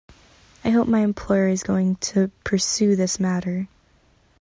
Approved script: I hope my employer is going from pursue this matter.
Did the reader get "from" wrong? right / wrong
wrong